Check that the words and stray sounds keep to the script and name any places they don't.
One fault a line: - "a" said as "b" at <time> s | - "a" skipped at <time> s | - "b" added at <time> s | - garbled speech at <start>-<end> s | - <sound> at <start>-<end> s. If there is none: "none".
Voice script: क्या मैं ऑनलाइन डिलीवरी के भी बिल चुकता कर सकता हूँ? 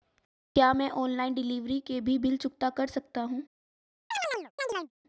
- chirp at 4.1-4.9 s